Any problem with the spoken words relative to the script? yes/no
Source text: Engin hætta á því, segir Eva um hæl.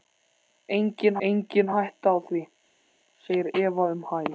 yes